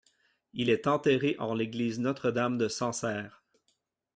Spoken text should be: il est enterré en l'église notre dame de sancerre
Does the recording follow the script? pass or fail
pass